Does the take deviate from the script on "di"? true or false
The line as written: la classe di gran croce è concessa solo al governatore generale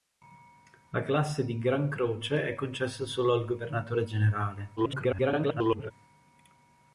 false